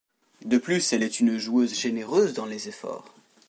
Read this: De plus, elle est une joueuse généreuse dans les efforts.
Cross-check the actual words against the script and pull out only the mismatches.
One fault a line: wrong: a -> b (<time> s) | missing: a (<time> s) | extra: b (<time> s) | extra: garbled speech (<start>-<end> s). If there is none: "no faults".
no faults